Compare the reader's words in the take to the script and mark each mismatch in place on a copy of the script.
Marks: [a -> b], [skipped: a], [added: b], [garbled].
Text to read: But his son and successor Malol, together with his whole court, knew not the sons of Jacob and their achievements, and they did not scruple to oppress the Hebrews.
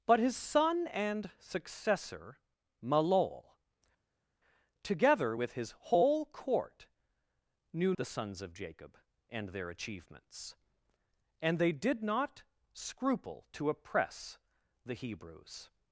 But his son and successor Malol, together with his whole court, knew [skipped: not] the sons of Jacob and their achievements, and they did not scruple to oppress the Hebrews.